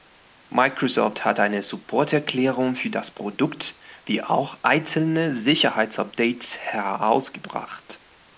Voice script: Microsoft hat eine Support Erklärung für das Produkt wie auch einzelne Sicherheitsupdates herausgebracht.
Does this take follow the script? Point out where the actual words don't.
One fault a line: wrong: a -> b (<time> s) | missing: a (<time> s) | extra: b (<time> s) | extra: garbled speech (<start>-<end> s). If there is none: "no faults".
no faults